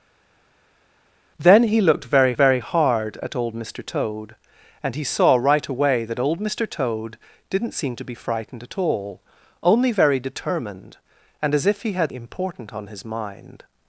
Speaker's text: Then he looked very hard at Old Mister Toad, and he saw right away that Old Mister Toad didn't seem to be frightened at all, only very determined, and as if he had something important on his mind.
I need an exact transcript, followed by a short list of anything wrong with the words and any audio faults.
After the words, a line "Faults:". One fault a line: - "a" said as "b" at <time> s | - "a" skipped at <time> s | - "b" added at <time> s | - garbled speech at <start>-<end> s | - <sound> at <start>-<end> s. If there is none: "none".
Then he looked very very hard at Old Mister Toad, and he saw right away that Old Mister Toad didn't seem to be frightened at all, only very determined, and as if he had important on his mind.
Faults:
- "very" added at 2.3 s
- "something" skipped at 12.1 s